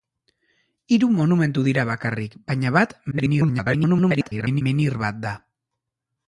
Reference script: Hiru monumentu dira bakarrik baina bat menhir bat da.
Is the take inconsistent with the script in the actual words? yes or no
yes